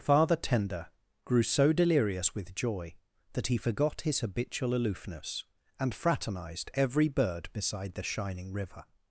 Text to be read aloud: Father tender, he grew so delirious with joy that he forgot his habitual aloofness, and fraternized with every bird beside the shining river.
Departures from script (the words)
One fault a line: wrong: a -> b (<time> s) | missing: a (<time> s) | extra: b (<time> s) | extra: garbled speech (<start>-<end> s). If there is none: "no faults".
missing: he (0.9 s)
missing: with (6.7 s)